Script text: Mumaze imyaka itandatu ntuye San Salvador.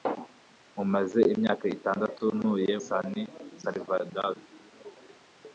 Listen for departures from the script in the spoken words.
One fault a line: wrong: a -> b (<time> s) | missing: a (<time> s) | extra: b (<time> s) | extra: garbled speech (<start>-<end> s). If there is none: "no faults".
no faults